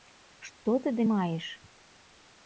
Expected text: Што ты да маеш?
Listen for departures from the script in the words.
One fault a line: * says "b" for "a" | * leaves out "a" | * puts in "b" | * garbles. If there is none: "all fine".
all fine